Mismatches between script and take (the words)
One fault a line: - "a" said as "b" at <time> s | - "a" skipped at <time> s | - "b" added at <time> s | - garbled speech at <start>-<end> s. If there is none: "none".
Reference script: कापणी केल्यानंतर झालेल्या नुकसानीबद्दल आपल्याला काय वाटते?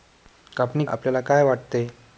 - "केल्यानंतर झालेल्या नुकसानीबद्दल" skipped at 0.8 s